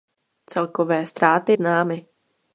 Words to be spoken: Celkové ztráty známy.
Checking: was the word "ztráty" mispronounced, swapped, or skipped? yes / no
no